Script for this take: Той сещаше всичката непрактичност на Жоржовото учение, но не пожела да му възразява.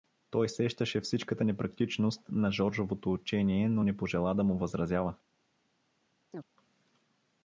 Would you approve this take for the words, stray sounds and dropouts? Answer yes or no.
no